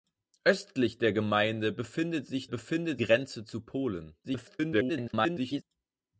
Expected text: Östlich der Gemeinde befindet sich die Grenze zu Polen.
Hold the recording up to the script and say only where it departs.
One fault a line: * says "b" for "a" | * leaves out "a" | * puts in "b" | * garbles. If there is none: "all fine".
* says "befindet" for "die"
* garbles